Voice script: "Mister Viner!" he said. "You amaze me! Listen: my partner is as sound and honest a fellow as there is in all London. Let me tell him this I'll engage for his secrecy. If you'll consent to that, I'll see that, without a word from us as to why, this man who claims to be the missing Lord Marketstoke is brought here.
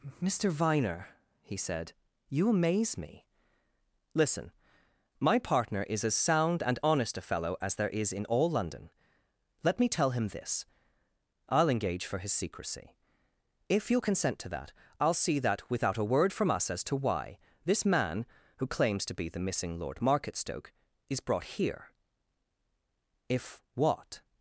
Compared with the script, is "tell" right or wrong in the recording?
right